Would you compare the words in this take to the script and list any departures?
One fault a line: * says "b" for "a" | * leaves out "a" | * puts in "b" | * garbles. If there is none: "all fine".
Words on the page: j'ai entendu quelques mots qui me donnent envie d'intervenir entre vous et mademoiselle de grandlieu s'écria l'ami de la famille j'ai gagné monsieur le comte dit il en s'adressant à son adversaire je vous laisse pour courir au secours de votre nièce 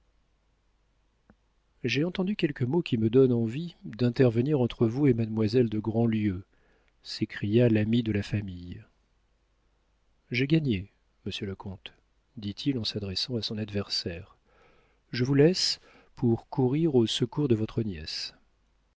all fine